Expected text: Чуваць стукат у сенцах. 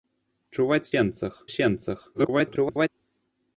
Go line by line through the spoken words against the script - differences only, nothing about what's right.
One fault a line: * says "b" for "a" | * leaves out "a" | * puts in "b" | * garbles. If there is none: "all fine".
* says "сенцах" for "стукат"
* garbles